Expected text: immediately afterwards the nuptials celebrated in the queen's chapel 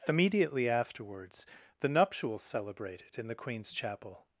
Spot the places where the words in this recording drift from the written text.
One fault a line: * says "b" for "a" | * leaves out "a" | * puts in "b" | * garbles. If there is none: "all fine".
all fine